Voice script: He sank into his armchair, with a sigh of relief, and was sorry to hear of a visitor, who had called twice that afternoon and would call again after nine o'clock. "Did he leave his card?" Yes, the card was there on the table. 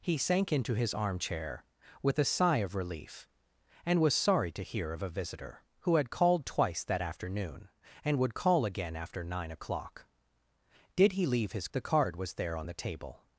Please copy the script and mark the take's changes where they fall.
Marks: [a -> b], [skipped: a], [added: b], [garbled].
He sank into his armchair, with a sigh of relief, and was sorry to hear of a visitor, who had called twice that afternoon and would call again after nine o'clock. "Did he leave his [skipped: card?" Yes,] the card was there on the table.